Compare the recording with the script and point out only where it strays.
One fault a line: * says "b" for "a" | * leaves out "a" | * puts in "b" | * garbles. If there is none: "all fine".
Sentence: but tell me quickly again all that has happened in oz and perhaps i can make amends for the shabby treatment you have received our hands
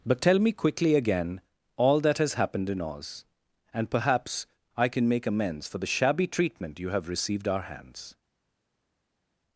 all fine